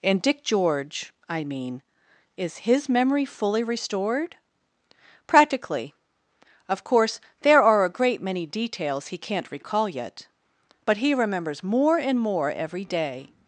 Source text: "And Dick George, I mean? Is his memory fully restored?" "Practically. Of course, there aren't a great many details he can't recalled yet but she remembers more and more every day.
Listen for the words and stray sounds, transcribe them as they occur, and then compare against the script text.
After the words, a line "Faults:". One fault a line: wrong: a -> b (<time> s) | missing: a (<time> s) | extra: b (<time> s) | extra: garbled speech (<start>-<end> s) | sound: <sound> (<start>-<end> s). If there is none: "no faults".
"And Dick George, I mean? Is his memory fully restored?" "Practically. Of course, there are a great many details he can't recall yet but he remembers more and more every day.
Faults:
wrong: aren't -> are (7.6 s)
wrong: recalled -> recall (9.5 s)
wrong: she -> he (11.0 s)